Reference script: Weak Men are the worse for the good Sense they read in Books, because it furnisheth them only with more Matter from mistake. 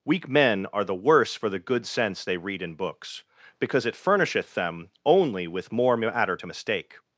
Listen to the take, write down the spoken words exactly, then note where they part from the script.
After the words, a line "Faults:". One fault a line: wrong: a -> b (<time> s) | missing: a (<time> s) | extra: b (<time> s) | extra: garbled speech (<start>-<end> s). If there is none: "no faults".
Weak Men are the worse for the good Sense they read in Books, because it furnisheth them only with more Matter to mistake.
Faults:
wrong: from -> to (6.3 s)